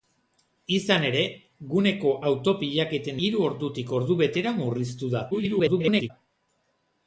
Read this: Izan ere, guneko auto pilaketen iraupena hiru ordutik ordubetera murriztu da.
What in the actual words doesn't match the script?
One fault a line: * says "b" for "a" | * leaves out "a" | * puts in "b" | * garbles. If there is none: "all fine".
* leaves out "iraupena"
* garbles